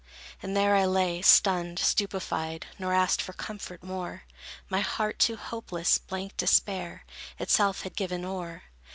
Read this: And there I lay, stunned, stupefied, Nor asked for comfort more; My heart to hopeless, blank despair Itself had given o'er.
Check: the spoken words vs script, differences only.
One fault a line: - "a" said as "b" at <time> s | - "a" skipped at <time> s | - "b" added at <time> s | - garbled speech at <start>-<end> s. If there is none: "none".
none